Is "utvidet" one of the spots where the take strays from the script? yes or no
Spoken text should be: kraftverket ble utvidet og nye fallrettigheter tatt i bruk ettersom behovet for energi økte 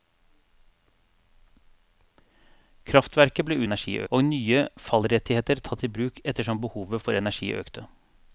yes